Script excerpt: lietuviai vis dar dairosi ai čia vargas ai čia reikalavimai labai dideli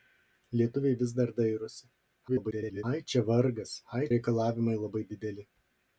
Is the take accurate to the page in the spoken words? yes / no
no